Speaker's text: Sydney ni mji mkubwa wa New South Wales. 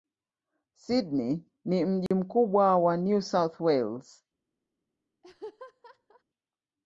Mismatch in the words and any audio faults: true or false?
true